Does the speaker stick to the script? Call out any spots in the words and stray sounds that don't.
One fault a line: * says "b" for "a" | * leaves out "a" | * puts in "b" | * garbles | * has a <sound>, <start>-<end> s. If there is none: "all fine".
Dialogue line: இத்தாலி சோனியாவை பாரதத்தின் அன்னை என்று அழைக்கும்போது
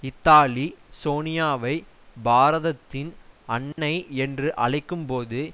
* has a dropout, 3.7-3.8 s